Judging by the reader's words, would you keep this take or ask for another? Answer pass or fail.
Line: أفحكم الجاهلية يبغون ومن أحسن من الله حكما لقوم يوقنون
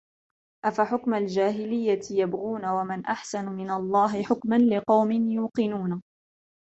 pass